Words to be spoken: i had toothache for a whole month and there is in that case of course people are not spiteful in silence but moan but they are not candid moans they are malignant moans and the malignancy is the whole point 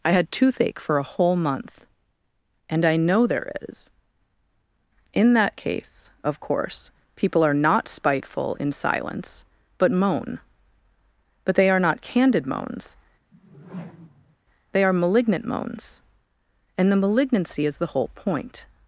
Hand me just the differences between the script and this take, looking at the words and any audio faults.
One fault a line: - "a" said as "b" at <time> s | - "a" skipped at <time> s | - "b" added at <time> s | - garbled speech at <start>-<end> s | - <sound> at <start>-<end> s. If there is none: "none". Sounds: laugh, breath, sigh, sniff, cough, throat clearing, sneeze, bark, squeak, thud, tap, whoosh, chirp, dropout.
- "i know" added at 2.9 s
- whoosh at 13.3-14.4 s